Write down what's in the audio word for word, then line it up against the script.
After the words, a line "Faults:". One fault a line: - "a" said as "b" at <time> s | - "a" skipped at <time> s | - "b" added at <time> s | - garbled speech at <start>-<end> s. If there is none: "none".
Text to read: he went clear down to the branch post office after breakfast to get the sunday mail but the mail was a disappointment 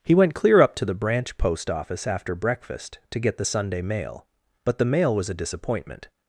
he went clear up to the branch post office after breakfast to get the sunday mail but the mail was a disappointment
Faults:
- "down" said as "up" at 0.6 s